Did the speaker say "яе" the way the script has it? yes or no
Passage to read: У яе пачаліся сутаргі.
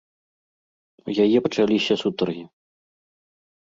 yes